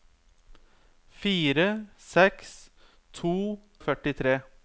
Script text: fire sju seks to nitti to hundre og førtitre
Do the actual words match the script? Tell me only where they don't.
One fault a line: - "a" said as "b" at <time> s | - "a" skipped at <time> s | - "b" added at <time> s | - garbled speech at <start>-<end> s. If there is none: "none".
- "sju" skipped at 1.7 s
- "nitti to hundre" skipped at 3.3 s